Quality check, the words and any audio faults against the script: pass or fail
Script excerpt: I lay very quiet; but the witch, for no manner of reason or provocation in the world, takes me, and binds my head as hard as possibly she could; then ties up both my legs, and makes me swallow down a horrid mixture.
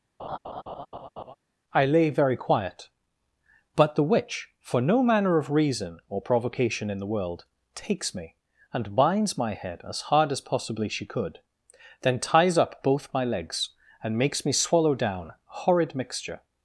fail